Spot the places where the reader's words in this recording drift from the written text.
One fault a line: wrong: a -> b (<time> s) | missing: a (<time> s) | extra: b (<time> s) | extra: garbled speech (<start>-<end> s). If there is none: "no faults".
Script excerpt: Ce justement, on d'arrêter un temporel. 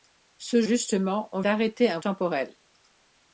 no faults